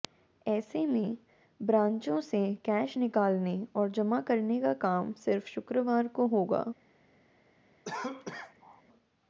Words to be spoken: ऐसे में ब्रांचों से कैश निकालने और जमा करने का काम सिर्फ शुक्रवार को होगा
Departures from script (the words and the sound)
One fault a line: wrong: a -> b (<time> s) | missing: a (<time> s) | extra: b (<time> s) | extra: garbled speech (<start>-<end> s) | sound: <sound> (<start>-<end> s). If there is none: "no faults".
sound: cough (7.9-8.8 s)